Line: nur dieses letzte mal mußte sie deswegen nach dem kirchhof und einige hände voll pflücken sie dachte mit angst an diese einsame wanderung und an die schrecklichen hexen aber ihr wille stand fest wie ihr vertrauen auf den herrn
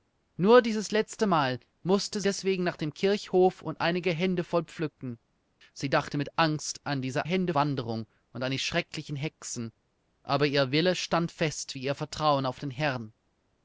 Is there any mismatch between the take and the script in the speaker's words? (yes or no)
yes